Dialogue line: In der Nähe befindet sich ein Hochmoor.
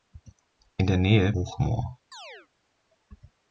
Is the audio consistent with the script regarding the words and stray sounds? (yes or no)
no